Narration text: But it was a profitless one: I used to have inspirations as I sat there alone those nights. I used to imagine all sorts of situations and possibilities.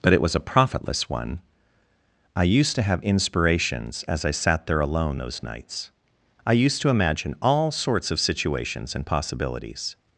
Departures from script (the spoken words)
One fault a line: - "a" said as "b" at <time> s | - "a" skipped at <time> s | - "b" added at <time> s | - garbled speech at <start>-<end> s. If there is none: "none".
none